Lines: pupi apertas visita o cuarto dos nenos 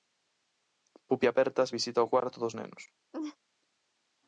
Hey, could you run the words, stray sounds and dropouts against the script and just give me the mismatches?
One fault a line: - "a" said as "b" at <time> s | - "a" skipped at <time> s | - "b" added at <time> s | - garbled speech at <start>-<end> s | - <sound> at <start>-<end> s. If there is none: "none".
- laugh at 3.1-3.4 s